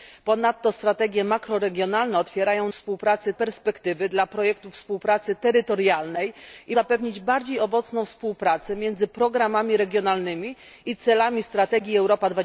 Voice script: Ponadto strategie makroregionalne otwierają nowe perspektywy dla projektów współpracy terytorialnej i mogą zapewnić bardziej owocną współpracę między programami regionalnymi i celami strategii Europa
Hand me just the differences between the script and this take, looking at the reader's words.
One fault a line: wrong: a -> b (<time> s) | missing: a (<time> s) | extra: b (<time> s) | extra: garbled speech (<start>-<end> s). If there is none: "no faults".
wrong: nowe -> współpracy (2.7 s)
missing: mogą (6.8 s)